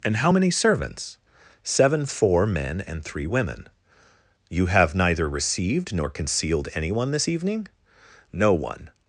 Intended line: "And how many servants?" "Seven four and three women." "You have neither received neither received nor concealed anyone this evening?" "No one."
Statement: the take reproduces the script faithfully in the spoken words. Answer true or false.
false